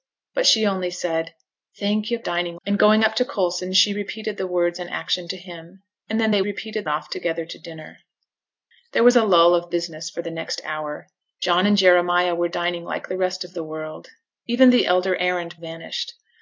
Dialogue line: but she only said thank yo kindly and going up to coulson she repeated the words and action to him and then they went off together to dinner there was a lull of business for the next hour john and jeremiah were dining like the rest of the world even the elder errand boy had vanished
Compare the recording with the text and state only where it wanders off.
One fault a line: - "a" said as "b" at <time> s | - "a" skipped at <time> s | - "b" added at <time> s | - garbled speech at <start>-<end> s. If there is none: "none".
- "kindly" said as "dining" at 2.2 s
- "went" said as "repeated" at 6.4 s
- "boy had" skipped at 15.6 s